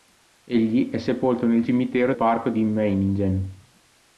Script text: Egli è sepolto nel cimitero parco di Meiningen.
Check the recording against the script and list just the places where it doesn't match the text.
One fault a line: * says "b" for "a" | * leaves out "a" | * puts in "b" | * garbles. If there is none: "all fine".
all fine